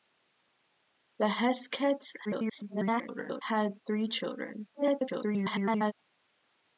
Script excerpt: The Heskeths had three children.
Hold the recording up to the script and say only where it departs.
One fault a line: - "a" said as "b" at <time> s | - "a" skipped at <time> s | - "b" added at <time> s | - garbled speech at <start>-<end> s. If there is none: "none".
- garbled speech at 2.2-3.4 s
- garbled speech at 4.7-5.9 s